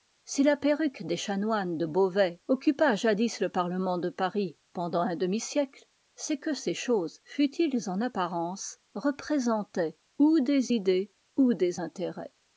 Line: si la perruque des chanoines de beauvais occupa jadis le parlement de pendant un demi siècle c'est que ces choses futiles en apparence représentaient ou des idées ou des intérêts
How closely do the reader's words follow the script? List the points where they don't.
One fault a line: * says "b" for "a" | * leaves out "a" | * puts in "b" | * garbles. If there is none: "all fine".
* puts in "paris"